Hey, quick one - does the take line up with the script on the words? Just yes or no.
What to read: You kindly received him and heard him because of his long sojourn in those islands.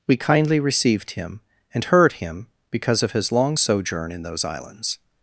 no